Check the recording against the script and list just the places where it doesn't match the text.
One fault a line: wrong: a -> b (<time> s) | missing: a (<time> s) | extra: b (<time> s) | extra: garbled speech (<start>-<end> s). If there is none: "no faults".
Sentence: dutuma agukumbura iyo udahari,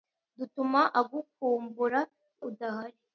missing: iyo (2.0 s)